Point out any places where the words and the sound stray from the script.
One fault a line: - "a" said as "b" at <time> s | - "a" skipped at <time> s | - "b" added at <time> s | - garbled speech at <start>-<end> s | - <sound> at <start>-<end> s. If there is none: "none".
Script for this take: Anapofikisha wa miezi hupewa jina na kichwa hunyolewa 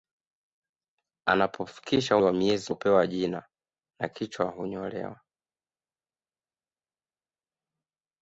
none